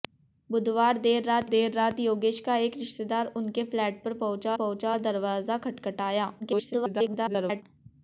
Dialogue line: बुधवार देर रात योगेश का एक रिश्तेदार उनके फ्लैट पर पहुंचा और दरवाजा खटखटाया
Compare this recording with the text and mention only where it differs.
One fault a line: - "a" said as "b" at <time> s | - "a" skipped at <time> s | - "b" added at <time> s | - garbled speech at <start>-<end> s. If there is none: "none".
- "देर रात" added at 1.4 s
- "पहुंचा" added at 4.5 s
- garbled speech at 6.4-7.6 s